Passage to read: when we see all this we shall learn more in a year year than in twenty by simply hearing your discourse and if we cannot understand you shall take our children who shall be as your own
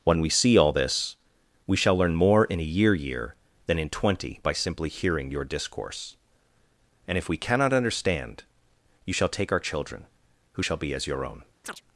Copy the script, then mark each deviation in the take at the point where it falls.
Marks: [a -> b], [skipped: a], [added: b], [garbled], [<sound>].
when we see all this we shall learn more in a year year than in twenty by simply hearing your discourse and if we cannot understand you shall take our children who shall be as your own [chirp]